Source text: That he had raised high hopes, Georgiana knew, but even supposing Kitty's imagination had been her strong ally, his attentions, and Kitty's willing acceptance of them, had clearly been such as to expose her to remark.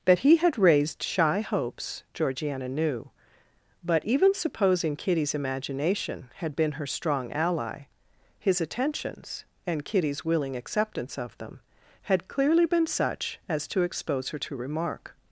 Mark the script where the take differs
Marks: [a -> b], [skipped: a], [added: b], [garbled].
That he had raised [high -> shy] hopes, Georgiana knew, but even supposing Kitty's imagination had been her strong ally, his attentions, and Kitty's willing acceptance of them, had clearly been such as to expose her to remark.